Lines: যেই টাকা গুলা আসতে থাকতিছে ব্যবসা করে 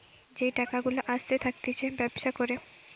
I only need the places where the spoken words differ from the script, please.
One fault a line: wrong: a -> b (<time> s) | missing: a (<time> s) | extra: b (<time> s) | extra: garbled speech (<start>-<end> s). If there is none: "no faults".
no faults